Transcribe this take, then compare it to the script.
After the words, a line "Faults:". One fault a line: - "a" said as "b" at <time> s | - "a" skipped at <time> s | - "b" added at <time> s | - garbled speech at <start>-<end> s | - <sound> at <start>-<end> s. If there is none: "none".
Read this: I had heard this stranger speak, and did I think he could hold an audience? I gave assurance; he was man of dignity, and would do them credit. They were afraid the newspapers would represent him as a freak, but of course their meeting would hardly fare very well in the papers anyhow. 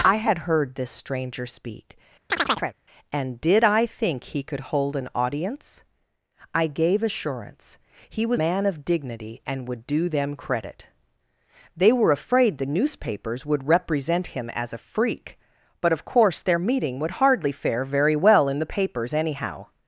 I had heard this stranger speak, and did I think he could hold an audience? I gave assurance; he was man of dignity, and would do them credit. They were afraid the newspapers would represent him as a freak, but of course their meeting would hardly fare very well in the papers anyhow.
Faults:
- chirp at 2.3-2.8 s